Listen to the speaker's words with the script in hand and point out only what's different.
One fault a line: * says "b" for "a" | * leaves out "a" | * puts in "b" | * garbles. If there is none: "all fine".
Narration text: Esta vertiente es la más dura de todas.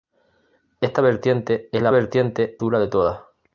* says "vertiente" for "más"